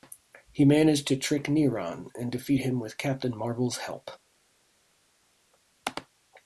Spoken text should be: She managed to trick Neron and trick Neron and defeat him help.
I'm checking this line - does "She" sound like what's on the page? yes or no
no